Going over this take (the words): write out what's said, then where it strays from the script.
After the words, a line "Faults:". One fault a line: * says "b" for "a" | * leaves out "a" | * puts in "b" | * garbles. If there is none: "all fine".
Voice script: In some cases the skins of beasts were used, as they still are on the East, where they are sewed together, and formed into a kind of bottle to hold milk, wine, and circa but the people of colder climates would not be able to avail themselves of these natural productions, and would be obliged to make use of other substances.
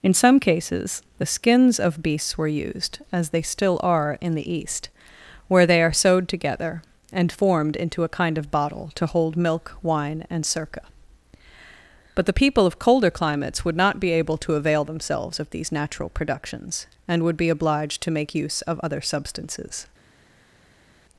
In some cases the skins of beasts were used, as they still are in the East, where they are sewed together, and formed into a kind of bottle to hold milk, wine, and circa but the people of colder climates would not be able to avail themselves of these natural productions, and would be obliged to make use of other substances.
Faults:
* says "in" for "on"